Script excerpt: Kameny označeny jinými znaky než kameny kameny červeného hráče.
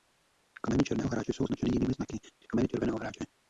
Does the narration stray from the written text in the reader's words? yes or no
yes